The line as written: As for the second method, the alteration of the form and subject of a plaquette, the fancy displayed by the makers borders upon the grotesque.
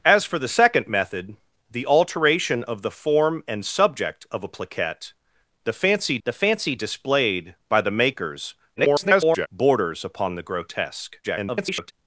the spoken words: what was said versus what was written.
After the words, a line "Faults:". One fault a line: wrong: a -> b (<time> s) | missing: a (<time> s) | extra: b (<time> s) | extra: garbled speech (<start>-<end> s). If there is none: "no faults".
As for the second method, the alteration of the form and subject of a plaquette, the fancy the fancy displayed by the makers [garbled] borders upon the grotesque. [garbled]
Faults:
extra: the fancy (6.2 s)
extra: garbled speech (8.8-9.5 s)
extra: garbled speech (11.2-11.9 s)